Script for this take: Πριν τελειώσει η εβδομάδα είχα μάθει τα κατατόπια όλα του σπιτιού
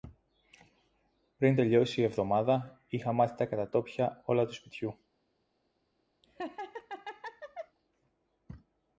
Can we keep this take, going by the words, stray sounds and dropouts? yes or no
no